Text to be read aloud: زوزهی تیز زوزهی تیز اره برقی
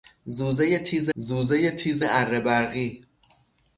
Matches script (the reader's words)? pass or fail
pass